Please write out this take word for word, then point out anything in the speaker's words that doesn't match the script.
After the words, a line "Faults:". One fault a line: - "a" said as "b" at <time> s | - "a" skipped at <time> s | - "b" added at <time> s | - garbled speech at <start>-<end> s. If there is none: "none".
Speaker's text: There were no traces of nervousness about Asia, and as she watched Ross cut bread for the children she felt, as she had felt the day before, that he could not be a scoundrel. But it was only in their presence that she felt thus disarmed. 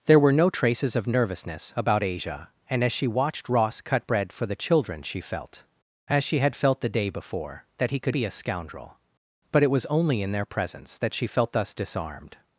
There were no traces of nervousness about Asia, and as she watched Ross cut bread for the children she felt, as she had felt the day before, that he could be a scoundrel. But it was only in their presence that she felt thus disarmed.
Faults:
- "not" skipped at 8.1 s